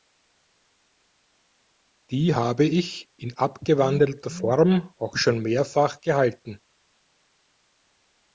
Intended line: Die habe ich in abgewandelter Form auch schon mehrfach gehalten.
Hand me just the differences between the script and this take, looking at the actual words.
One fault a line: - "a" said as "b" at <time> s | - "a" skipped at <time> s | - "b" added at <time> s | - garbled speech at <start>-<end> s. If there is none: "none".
none